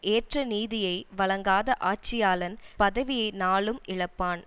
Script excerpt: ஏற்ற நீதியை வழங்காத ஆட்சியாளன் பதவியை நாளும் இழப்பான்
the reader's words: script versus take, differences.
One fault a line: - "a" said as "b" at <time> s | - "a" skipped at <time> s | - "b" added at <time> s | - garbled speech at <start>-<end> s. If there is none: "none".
none